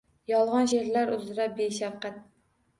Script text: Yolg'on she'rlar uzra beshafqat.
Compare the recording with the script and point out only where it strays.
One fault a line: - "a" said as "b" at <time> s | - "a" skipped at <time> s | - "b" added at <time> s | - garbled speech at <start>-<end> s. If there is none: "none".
none